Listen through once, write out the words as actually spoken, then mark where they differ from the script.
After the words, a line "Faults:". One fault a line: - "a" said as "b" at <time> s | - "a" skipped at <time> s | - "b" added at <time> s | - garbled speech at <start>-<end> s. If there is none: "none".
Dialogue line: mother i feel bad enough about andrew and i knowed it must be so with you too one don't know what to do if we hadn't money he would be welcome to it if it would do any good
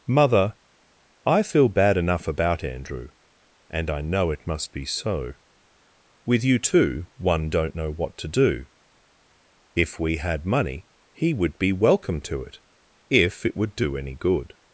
mother i feel bad enough about andrew and i know it must be so with you too one don't know what to do if we had money he would be welcome to it if it would do any good
Faults:
- "knowed" said as "know" at 4.0 s
- "hadn't" said as "had" at 10.2 s